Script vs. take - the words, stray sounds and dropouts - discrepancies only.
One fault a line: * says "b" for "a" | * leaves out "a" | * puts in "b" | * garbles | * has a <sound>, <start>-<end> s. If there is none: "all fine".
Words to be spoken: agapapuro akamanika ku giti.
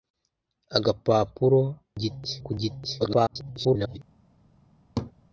* says "giti" for "akamanika"
* garbles
* has a laugh, 5.0-5.1 s